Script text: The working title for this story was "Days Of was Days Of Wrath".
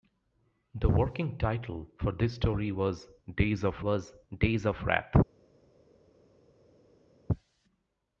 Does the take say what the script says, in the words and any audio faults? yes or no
yes